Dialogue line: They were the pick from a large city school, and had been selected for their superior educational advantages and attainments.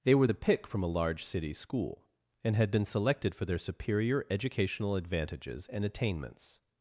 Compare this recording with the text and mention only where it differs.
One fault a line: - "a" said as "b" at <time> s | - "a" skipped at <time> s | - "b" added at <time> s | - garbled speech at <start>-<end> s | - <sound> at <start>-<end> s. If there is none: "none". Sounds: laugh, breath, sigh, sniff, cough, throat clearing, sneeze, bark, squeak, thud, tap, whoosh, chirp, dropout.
none